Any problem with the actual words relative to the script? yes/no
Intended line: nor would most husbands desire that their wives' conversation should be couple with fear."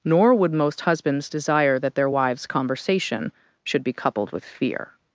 yes